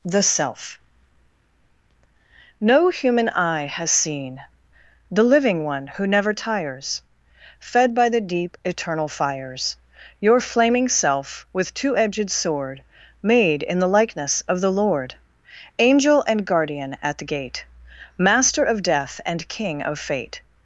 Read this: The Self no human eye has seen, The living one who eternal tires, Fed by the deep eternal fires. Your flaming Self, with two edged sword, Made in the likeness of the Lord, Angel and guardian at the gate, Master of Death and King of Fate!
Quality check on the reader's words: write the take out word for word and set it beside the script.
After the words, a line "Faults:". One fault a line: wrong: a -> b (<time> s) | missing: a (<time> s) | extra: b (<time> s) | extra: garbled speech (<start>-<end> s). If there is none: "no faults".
The Self no human eye has seen, The living one who never tires, Fed by the deep eternal fires. Your flaming Self, with two edged sword, Made in the likeness of the Lord, Angel and guardian at the gate, Master of Death and King of Fate!
Faults:
wrong: eternal -> never (6.1 s)